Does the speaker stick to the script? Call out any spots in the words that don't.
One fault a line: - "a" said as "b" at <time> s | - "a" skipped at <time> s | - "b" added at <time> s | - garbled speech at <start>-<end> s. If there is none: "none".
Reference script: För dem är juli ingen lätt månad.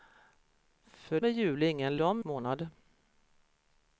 - "dem" skipped at 1.2 s
- "lätt" said as "dem" at 2.0 s